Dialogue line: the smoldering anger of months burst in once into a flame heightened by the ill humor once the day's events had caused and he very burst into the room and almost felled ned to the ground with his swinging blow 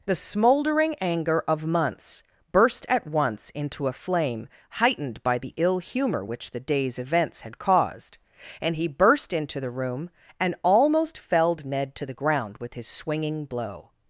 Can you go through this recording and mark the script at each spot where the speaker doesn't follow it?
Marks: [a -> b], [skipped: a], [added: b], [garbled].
the smoldering anger of months burst [in -> at] once into a flame heightened by the ill humor [once -> which] the day's events had caused and he [skipped: very] burst into the room and almost felled ned to the ground with his swinging blow